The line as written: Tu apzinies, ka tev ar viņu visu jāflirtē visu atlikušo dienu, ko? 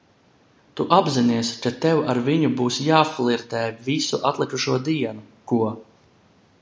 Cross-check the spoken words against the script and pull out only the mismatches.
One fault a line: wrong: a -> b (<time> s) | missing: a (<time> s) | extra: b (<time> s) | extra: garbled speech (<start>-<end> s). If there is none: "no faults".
wrong: visu -> būs (2.6 s)